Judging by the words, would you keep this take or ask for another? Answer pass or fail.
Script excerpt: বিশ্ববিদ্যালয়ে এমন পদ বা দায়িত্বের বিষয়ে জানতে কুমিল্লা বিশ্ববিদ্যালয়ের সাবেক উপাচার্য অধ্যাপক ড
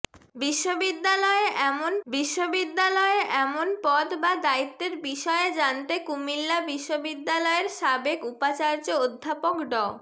fail